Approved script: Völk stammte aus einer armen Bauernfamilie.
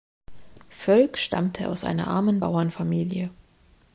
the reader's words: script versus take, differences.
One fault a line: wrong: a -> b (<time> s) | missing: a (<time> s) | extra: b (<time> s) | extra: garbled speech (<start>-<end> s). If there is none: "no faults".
no faults